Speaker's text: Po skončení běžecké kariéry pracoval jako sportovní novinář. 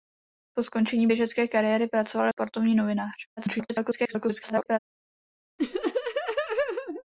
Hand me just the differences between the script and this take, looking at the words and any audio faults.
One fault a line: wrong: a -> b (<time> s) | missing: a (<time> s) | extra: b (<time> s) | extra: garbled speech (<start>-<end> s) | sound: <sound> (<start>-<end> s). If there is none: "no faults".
missing: jako (2.3 s)
extra: garbled speech (3.4-4.8 s)
sound: laugh (5.6-7.0 s)